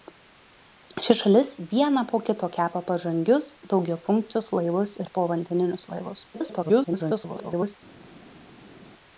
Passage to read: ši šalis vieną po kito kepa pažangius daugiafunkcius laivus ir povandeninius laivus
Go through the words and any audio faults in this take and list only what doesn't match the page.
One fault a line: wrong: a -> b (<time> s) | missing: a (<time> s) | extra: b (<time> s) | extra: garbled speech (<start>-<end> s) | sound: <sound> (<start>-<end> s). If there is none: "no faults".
extra: garbled speech (6.3-7.8 s)